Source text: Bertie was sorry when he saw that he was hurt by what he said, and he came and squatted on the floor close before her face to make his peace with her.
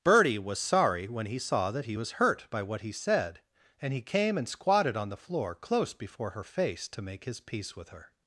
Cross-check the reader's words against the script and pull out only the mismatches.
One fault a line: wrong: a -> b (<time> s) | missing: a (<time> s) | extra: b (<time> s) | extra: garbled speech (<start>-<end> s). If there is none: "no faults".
no faults